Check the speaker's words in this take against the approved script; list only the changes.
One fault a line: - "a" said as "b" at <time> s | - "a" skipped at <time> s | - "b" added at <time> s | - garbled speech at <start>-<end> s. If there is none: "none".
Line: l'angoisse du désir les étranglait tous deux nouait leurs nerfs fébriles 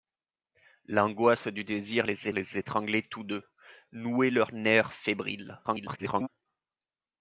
- "les" added at 2.3 s
- garbled speech at 5.6-6.3 s